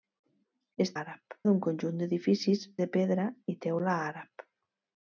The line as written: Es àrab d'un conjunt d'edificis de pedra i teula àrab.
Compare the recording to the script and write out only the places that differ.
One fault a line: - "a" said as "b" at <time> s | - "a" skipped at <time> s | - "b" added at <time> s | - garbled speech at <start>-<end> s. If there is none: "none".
none